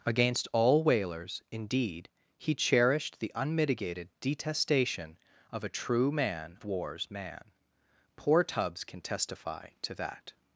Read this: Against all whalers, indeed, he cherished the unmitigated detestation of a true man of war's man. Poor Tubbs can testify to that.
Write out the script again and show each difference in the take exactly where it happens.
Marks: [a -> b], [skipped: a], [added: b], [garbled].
Against all whalers, indeed, he cherished the unmitigated detestation of a true man [skipped: of] war's man. Poor Tubbs can testify to that.